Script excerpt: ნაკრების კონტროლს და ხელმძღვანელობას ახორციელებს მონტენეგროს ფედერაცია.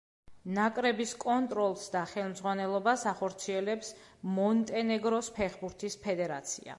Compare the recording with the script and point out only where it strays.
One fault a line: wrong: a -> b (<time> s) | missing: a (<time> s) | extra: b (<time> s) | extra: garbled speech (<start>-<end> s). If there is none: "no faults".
extra: ფეხბურთის (5.4 s)